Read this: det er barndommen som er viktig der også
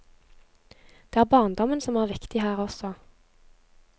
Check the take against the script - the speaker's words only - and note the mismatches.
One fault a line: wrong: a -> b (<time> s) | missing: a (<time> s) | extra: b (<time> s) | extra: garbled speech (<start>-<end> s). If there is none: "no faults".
wrong: der -> her (2.4 s)